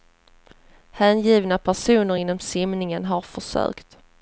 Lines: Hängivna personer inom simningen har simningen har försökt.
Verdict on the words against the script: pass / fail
fail